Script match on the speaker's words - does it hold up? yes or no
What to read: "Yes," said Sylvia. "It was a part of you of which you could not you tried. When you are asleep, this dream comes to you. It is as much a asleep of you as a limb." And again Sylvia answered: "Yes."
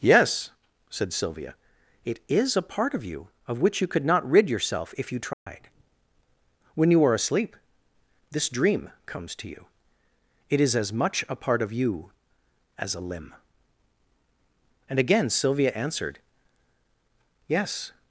no